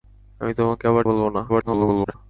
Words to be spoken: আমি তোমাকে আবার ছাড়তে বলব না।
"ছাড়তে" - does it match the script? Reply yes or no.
no